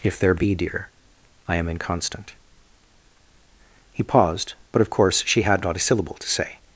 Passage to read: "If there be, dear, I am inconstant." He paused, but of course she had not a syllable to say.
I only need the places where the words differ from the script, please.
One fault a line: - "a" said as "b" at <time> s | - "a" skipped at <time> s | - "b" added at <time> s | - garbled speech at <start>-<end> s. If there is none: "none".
none